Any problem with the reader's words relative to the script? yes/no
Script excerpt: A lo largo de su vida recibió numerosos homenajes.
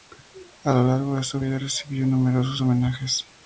no